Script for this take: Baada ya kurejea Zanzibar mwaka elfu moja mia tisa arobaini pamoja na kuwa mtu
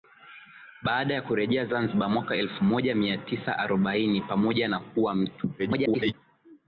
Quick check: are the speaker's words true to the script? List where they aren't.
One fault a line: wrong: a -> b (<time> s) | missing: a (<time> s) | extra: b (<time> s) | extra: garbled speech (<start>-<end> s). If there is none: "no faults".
extra: garbled speech (5.6-6.1 s)